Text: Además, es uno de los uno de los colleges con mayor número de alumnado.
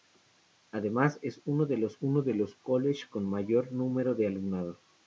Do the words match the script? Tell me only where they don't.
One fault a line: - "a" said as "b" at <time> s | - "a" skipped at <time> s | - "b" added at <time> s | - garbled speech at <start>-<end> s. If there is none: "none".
none